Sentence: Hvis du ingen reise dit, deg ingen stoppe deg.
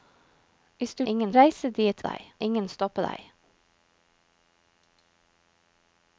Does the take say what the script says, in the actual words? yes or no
yes